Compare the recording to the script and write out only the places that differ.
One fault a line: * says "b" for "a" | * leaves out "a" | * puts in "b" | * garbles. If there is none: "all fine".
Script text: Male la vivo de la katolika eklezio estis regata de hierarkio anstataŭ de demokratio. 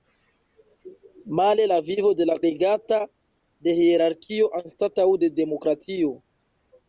* leaves out "katolika eklezio estis"